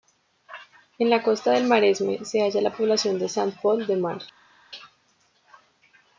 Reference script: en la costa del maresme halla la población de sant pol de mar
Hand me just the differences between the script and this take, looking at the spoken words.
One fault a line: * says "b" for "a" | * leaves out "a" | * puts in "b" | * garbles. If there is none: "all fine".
* puts in "se"